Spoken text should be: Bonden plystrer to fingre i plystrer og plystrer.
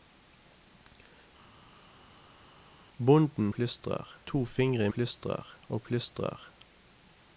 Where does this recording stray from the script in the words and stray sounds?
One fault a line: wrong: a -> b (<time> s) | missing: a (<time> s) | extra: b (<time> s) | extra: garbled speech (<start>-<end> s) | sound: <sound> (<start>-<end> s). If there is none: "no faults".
no faults